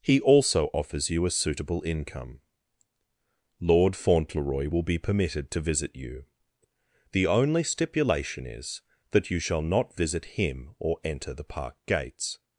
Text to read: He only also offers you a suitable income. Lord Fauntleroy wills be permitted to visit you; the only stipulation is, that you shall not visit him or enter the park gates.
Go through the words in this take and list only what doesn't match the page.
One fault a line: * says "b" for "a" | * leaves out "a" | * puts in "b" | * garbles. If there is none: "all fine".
* leaves out "only"
* says "will" for "wills"